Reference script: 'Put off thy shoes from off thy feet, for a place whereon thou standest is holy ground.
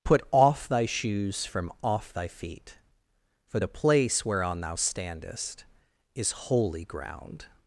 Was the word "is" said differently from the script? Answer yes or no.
no